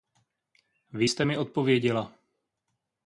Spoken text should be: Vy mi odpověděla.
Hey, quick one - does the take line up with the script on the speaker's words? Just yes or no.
no